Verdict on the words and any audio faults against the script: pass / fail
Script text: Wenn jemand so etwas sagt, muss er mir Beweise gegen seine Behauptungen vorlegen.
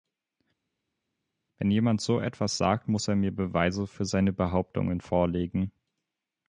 fail